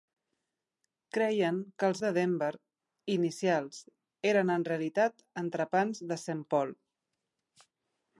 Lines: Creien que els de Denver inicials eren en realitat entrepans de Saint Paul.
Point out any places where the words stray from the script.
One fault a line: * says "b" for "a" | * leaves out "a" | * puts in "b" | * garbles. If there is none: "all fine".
all fine